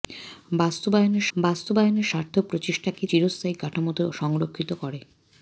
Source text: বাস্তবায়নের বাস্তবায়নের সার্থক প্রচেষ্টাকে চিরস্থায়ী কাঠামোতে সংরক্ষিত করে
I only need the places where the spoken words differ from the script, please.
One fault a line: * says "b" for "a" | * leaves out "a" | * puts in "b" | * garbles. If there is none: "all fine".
all fine